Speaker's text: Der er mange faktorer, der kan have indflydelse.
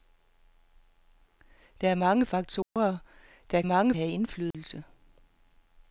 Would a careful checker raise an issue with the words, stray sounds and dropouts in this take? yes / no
yes